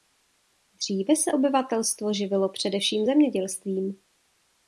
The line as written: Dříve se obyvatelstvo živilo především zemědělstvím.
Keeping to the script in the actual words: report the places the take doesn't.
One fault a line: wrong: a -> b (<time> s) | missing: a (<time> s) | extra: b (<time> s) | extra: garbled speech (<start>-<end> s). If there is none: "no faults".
no faults